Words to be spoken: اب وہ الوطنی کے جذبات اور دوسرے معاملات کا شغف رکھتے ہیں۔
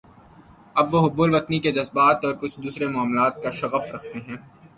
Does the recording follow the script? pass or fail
fail